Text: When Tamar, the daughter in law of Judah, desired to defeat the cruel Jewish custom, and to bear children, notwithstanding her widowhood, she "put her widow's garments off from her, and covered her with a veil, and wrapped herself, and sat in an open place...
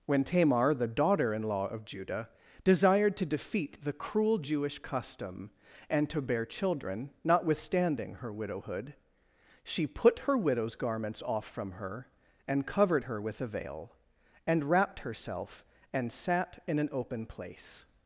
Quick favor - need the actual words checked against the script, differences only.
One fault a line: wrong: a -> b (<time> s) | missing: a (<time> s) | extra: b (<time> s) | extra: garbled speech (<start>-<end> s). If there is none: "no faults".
no faults